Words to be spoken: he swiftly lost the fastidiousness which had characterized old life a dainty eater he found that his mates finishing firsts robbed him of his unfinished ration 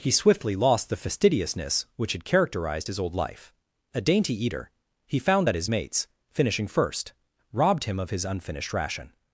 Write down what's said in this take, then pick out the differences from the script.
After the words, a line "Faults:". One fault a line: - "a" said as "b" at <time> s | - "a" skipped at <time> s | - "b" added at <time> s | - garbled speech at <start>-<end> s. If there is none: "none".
he swiftly lost the fastidiousness which had characterized his old life a dainty eater he found that his mates finishing first robbed him of his unfinished ration
Faults:
- "his" added at 2.9 s
- "firsts" said as "first" at 6.7 s